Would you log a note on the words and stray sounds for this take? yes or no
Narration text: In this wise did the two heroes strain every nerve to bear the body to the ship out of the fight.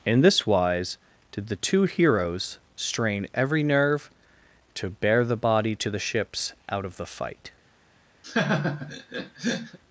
yes